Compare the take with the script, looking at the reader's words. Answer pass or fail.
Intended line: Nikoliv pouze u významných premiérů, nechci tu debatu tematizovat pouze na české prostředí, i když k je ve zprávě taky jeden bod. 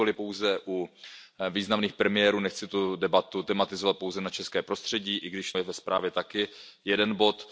pass